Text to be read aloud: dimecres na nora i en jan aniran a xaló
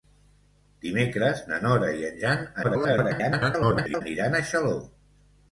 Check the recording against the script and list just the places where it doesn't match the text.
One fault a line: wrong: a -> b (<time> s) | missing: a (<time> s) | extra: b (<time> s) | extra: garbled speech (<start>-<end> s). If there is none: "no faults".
extra: garbled speech (2.6-4.0 s)